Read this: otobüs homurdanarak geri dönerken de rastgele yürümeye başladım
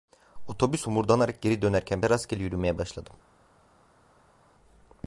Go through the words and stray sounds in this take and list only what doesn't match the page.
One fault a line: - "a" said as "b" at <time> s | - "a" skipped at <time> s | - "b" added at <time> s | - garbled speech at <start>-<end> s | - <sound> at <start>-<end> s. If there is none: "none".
none